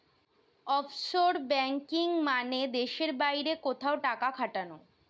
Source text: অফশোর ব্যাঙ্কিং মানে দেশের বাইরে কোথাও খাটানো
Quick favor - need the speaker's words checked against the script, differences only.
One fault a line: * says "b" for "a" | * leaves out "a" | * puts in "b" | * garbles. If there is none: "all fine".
* puts in "টাকা"